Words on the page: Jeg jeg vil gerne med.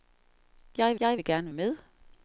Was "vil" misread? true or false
false